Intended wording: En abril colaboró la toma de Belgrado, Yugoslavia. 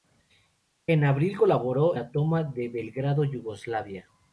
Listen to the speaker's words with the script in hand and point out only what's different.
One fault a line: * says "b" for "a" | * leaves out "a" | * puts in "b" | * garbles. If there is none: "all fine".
all fine